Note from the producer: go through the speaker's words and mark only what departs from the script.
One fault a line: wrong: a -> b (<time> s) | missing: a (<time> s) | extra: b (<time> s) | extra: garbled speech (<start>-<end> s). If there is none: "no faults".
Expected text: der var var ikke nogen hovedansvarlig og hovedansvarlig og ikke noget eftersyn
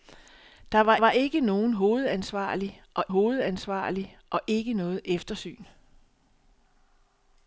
no faults